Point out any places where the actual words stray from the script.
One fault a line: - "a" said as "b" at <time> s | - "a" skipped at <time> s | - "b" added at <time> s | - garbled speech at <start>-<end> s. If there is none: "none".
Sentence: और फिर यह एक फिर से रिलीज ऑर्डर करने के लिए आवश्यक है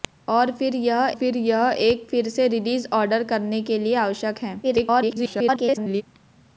- "फिर यह" added at 1.1 s
- garbled speech at 4.6-6.0 s